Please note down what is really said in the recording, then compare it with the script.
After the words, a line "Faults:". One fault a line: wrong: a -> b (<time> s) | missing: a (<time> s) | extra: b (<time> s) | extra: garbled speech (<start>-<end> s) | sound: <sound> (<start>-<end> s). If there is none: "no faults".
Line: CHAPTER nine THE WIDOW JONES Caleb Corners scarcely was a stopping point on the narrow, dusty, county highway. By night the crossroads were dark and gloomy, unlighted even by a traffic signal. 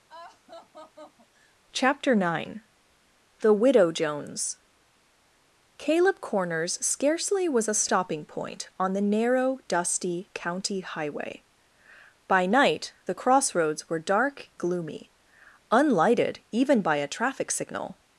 CHAPTER nine THE WIDOW JONES Caleb Corners scarcely was a stopping point on the narrow, dusty, county highway. By night the crossroads were dark gloomy, unlighted even by a traffic signal.
Faults:
sound: laugh (0.1-1.6 s)
missing: and (14.5 s)